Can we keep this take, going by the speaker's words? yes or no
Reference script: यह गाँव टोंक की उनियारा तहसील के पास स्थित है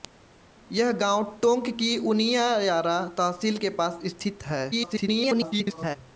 no